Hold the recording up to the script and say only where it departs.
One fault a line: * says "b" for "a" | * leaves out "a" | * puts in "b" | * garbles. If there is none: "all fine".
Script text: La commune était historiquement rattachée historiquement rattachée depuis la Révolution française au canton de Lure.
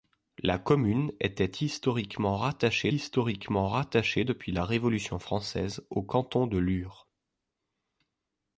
all fine